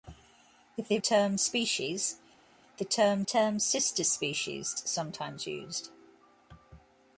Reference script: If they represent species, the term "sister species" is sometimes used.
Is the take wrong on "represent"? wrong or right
wrong